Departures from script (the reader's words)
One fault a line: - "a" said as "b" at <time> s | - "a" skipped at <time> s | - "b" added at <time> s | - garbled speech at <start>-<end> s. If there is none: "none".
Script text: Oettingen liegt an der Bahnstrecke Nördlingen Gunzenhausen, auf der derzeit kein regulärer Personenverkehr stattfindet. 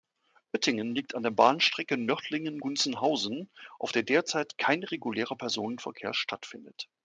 none